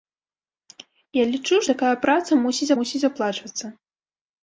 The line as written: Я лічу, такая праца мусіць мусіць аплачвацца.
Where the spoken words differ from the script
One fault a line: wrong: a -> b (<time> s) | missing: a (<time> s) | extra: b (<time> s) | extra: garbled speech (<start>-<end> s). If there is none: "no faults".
no faults